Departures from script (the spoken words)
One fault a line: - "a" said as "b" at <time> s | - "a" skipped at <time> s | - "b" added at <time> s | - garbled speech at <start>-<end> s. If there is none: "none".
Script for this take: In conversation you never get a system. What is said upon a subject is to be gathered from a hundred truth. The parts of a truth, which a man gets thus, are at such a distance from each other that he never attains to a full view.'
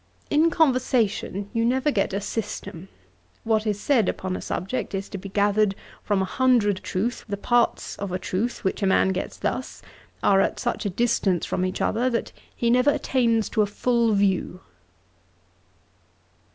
none